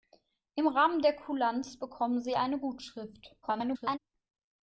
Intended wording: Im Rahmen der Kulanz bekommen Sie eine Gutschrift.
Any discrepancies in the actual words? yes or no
yes